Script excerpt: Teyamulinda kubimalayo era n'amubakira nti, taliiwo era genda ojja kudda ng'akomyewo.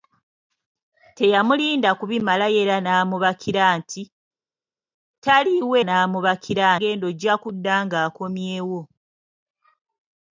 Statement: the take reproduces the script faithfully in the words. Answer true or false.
false